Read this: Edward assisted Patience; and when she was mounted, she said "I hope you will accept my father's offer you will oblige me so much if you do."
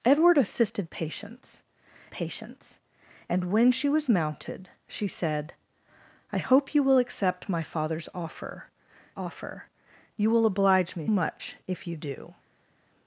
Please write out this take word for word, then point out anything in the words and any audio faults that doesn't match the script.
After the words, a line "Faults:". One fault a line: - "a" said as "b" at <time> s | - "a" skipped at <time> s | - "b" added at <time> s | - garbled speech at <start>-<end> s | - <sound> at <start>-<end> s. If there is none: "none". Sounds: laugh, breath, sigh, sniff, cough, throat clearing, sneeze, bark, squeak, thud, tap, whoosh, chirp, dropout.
Edward assisted Patience Patience; and when she was mounted, she said "I hope you will accept my father's offer offer you will oblige me much if you do."
Faults:
- "Patience" added at 2.1 s
- "offer" added at 9.1 s
- "so" skipped at 11.1 s